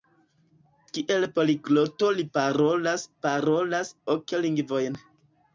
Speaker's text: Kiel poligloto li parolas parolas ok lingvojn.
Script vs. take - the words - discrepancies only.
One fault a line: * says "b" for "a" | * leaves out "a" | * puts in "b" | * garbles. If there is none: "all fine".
all fine